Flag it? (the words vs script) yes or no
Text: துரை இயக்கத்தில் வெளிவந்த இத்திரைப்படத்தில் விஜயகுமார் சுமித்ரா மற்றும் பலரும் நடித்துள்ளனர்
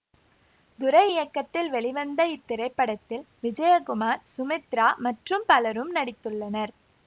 no